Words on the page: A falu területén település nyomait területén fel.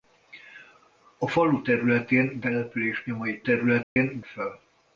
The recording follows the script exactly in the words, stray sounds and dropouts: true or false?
false